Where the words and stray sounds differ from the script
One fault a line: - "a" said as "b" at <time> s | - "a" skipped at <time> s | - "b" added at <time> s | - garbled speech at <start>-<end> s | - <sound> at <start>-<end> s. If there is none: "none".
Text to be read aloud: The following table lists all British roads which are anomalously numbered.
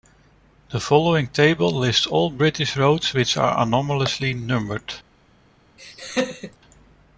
- laugh at 5.8-6.6 s